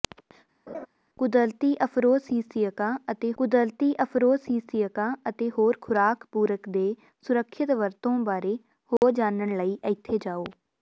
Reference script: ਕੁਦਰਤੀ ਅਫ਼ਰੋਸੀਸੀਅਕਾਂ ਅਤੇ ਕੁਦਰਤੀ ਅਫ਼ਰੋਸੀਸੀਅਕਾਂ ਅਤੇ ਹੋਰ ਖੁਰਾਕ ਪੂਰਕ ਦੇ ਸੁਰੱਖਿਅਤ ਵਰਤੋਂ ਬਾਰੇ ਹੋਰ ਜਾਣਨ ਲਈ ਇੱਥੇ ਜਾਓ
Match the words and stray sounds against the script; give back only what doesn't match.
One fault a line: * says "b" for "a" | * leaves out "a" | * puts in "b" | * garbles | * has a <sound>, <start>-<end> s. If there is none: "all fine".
* has a laugh, 0.7-0.9 s
* has a dropout, 9.0-9.0 s